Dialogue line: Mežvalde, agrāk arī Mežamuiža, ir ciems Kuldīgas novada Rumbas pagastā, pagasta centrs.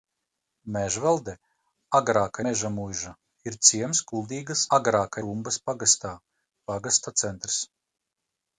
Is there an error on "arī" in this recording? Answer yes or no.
yes